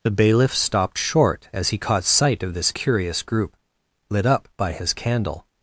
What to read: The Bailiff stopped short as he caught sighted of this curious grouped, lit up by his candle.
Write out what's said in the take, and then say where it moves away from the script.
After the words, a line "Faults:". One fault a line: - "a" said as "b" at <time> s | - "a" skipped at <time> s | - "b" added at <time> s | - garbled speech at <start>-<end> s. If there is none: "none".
The Bailiff stopped short as he caught sight of this curious group, lit up by his candle.
Faults:
- "sighted" said as "sight" at 2.0 s
- "grouped" said as "group" at 3.2 s